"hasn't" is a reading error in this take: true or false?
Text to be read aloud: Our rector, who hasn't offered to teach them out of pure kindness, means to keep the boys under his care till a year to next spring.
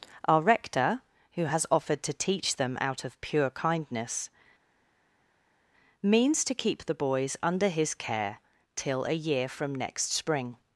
true